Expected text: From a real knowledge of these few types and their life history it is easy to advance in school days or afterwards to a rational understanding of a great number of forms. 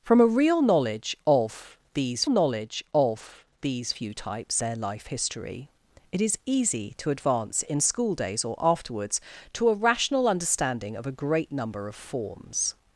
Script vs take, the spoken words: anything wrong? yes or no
yes